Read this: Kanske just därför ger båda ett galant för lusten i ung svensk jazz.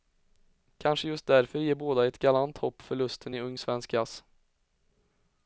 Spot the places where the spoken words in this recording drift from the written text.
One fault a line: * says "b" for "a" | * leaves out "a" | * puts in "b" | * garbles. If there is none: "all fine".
* puts in "hopp"